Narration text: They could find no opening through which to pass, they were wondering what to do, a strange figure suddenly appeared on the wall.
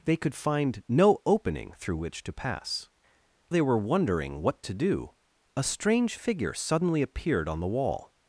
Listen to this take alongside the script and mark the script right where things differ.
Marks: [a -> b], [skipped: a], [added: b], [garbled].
They could find no opening through which to pass, they were wondering what to do, a strange figure suddenly appeared on the wall.